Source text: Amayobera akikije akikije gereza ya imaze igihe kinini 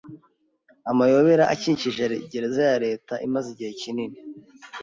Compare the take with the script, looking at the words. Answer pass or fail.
fail